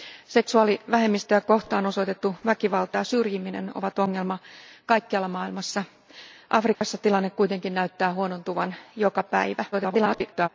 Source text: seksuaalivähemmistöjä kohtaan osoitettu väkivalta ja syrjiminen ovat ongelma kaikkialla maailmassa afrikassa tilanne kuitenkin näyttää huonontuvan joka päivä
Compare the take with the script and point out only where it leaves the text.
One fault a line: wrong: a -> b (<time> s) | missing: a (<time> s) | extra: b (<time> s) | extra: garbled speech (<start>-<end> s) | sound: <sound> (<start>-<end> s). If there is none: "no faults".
sound: dropout (6.7-6.8 s)
extra: garbled speech (9.7-10.5 s)